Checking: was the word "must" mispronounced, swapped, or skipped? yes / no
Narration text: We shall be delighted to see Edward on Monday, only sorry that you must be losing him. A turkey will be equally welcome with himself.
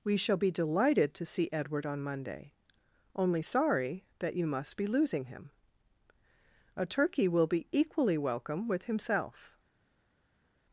no